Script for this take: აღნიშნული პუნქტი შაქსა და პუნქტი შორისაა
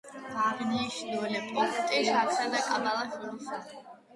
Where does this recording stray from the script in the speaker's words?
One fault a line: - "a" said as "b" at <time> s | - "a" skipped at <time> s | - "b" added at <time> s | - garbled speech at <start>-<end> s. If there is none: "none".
- "პუნქტი" said as "კაბალას" at 2.7 s